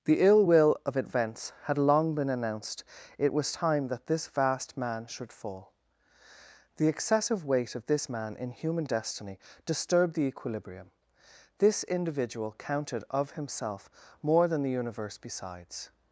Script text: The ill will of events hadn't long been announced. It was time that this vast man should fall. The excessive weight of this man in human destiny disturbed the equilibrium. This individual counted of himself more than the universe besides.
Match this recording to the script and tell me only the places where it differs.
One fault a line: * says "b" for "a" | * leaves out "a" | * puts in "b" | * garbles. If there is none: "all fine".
* says "had" for "hadn't"